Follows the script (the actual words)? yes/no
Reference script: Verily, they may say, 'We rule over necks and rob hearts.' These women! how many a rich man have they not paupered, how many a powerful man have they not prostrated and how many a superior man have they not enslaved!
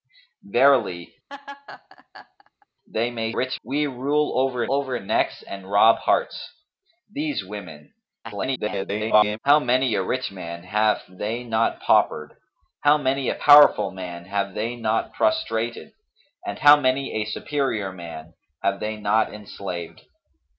no